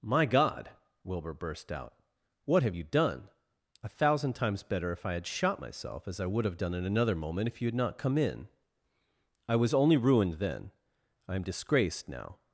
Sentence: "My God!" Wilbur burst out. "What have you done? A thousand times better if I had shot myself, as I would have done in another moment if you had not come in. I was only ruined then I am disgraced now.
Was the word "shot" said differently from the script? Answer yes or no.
no